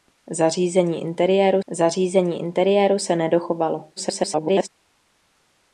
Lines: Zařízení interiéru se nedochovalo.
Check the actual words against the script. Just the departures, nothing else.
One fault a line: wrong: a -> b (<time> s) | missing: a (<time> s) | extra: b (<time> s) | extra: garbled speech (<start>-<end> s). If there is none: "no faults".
extra: zařízení interiéru (1.7 s)
extra: garbled speech (4.0-4.7 s)